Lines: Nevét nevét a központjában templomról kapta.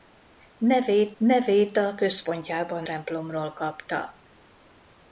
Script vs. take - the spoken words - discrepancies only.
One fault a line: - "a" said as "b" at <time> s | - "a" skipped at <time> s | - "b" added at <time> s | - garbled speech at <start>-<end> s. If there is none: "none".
none